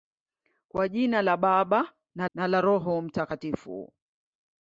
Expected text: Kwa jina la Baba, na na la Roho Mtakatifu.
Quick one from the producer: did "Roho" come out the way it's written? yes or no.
yes